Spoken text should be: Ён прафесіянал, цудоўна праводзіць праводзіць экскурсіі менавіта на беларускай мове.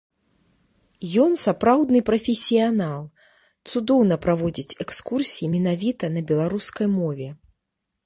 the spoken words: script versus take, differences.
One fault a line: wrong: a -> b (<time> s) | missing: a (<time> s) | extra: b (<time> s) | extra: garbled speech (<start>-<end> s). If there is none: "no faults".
extra: сапраўдны (1.4 s)
missing: праводзіць (4.8 s)